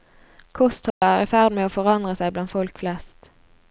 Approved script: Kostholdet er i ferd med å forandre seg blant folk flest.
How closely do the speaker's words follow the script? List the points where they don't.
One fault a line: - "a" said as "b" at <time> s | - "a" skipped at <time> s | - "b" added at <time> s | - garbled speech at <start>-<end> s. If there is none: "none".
none